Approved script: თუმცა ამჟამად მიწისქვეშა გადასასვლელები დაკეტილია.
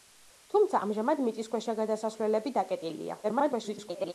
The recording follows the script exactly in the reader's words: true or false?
false